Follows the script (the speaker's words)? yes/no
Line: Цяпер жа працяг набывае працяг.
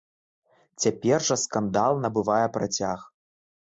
no